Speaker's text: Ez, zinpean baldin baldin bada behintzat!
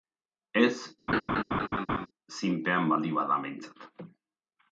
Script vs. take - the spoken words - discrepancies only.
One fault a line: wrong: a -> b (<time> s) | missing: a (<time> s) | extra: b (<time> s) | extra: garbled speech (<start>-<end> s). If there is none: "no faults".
missing: baldin (3.2 s)